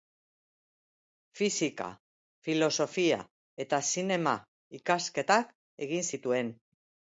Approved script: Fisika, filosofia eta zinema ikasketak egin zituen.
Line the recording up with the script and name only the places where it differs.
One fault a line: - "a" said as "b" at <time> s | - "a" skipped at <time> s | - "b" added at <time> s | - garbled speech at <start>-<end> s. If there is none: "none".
none